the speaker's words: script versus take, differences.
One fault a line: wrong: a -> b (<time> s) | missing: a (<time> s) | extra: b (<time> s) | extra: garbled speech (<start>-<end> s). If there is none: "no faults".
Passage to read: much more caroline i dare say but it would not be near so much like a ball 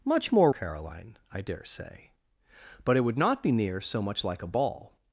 no faults